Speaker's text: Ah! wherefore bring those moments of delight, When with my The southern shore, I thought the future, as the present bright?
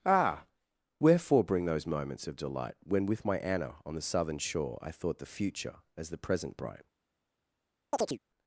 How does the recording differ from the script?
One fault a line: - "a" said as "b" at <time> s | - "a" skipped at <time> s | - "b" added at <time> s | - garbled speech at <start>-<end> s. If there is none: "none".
- "Anna on" added at 3.4 s